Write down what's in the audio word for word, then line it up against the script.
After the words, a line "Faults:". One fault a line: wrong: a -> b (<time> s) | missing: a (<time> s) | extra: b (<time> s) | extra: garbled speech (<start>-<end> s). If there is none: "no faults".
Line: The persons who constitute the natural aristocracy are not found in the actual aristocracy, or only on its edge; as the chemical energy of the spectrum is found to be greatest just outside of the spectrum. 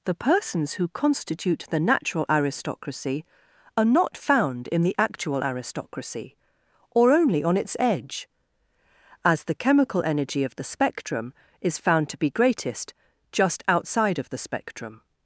The persons who constitute the natural aristocracy are not found in the actual aristocracy, or only on its edge; as the chemical energy of the spectrum is found to be greatest just outside of the spectrum.
Faults:
no faults